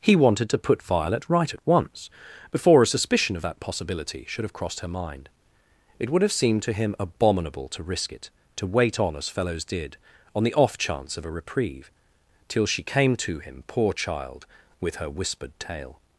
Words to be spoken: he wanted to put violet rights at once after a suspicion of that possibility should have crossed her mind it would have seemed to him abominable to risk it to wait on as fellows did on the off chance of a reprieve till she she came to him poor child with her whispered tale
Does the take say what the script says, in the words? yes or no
no